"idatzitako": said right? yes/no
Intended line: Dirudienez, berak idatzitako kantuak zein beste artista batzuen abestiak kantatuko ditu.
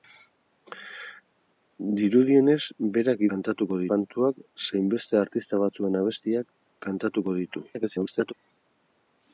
no